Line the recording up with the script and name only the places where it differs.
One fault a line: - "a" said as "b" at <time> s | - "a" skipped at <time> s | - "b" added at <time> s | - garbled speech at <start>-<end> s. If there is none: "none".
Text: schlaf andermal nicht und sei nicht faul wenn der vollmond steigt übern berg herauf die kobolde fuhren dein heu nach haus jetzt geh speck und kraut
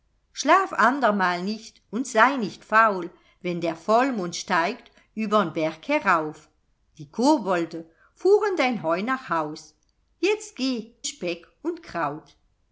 none